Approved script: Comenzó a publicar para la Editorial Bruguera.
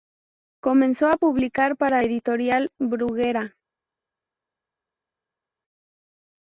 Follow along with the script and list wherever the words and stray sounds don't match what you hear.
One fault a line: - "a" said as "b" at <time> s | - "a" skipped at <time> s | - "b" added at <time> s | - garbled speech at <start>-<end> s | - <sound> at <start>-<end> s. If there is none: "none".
- "la" skipped at 2.0 s